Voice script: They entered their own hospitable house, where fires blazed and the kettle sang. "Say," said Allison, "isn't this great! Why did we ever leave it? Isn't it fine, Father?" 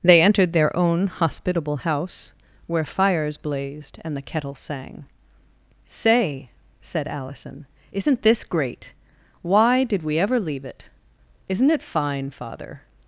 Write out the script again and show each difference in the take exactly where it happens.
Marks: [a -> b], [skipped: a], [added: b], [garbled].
They entered their own hospitable house, where fires blazed and the kettle sang. "Say," said Allison, "isn't this great! Why did we ever leave it? Isn't it fine, Father?"